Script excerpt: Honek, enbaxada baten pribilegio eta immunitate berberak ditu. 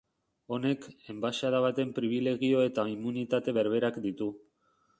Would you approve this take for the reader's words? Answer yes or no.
yes